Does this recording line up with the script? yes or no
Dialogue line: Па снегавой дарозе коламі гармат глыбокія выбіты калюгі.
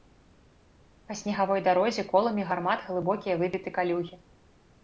yes